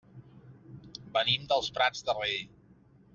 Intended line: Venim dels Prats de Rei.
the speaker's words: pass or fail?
pass